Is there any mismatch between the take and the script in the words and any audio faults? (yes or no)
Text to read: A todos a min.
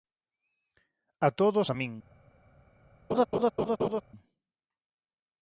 yes